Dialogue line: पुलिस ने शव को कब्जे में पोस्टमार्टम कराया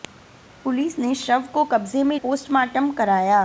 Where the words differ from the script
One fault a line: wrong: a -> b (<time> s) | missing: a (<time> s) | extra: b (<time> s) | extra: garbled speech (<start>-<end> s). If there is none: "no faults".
no faults